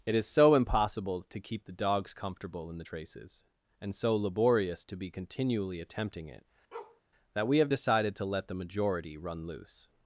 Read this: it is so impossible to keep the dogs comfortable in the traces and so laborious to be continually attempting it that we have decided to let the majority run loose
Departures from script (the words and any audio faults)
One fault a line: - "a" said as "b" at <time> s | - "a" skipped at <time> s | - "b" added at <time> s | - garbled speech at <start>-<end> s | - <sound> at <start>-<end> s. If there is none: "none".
- bark at 6.7-7.0 s